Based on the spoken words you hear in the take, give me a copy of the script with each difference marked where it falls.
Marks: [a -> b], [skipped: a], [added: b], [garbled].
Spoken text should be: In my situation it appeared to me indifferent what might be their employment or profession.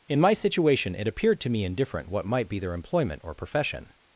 In my situation it appeared to me indifferent what might be their employment or profession.